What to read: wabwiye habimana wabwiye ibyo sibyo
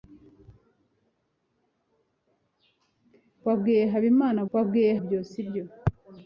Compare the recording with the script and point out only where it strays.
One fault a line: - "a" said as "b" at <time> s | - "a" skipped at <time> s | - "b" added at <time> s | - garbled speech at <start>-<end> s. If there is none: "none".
none